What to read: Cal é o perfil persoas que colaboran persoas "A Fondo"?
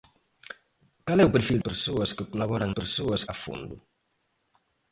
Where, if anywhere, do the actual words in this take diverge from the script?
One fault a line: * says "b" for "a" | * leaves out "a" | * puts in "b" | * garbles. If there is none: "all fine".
all fine